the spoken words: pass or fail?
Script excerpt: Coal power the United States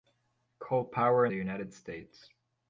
pass